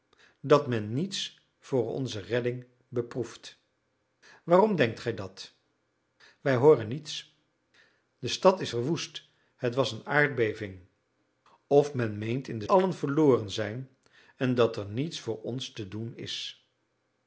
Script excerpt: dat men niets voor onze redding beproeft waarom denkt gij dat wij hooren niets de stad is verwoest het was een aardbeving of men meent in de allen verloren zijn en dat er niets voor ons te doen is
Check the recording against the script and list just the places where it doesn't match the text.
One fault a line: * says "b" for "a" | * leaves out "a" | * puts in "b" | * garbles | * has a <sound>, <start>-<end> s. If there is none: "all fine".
all fine